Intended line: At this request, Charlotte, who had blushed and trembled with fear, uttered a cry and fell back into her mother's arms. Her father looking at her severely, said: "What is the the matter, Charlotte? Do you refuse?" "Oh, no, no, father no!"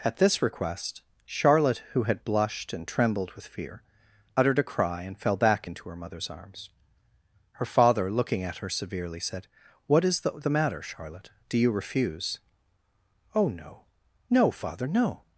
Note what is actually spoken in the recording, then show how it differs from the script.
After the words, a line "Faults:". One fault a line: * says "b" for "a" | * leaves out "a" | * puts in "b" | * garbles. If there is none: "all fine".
At this request, Charlotte, who had blushed and trembled with fear, uttered a cry and fell back into her mother's arms. Her father looking at her severely, said: "What is the the matter, Charlotte? Do you refuse?" "Oh, no, no, father no!"
Faults:
all fine